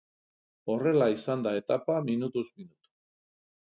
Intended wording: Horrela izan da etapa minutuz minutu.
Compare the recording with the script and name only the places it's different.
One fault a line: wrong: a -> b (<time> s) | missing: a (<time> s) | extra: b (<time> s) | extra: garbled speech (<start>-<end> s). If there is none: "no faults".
no faults